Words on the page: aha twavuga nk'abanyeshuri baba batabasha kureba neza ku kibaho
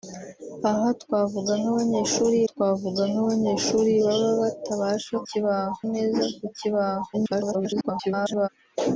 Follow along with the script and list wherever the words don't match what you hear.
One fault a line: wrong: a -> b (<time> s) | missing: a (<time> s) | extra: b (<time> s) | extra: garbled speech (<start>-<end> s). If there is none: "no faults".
extra: twavuga nk'abanyeshuri (2.5 s)
wrong: kureba -> kibaho (5.3 s)
extra: garbled speech (7.1-8.5 s)